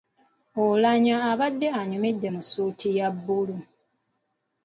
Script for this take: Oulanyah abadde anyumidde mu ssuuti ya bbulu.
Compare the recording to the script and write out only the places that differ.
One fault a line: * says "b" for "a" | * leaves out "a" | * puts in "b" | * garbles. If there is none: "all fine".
all fine